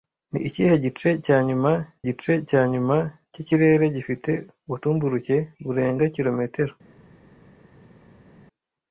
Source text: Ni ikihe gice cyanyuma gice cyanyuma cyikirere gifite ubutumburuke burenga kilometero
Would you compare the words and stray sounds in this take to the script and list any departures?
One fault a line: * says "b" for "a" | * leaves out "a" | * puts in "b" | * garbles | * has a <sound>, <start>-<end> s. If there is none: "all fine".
all fine